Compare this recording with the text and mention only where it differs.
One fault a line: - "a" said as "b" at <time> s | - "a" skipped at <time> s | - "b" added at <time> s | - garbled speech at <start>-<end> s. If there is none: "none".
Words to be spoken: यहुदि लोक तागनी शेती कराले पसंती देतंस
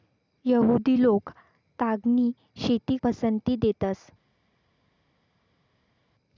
- "कराले" skipped at 3.0 s